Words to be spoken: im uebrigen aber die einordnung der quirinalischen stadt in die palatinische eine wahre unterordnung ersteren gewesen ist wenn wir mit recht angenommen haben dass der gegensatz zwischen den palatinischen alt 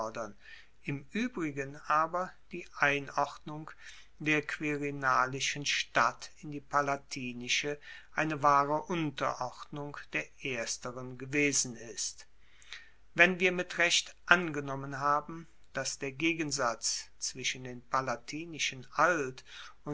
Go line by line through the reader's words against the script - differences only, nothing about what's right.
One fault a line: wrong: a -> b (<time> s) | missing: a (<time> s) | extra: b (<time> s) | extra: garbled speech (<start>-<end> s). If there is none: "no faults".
extra: der (10.1 s)